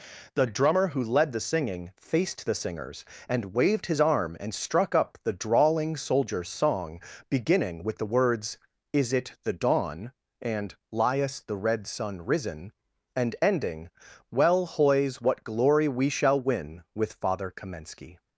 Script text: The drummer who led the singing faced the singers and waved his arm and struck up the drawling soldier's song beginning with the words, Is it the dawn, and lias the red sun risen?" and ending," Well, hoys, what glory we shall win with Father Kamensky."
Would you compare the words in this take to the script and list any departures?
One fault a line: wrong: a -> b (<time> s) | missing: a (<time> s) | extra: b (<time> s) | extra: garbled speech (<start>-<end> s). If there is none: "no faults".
no faults